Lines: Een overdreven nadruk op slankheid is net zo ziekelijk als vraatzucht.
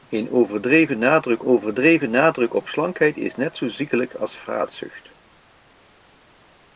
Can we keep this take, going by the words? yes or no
no